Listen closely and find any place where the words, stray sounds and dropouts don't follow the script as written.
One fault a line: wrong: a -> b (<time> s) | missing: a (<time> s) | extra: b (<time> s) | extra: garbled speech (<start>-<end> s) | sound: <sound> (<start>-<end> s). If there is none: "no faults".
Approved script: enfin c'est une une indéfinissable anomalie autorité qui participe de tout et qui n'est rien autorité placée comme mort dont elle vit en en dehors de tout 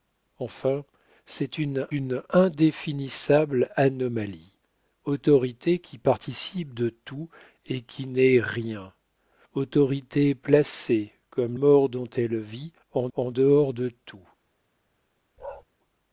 sound: bark (15.4-15.6 s)